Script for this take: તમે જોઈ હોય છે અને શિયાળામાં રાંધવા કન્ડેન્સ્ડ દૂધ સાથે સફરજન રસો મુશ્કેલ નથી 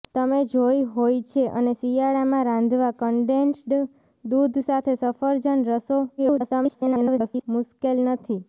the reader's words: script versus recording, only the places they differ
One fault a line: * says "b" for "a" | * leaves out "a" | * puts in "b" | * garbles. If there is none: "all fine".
* garbles